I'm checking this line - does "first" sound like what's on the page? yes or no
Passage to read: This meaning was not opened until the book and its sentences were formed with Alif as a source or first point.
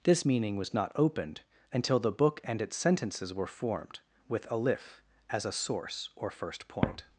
yes